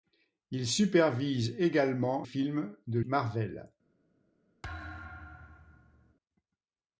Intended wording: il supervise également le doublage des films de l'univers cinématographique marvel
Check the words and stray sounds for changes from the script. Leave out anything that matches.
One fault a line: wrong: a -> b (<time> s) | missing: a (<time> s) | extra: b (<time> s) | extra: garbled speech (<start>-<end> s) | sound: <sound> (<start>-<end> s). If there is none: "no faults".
missing: le doublage des (2.2 s)
missing: l'univers cinématographique (3.0 s)
sound: thud (4.6-6.1 s)